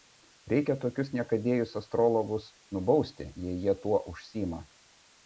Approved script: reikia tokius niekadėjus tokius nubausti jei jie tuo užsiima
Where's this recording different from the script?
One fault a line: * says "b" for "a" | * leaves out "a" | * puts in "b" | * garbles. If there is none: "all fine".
* says "astrologus" for "tokius"